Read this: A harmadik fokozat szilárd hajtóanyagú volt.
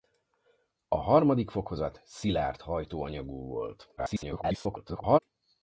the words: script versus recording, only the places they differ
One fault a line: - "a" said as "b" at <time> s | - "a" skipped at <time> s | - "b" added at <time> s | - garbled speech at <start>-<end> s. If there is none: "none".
- garbled speech at 4.0-5.2 s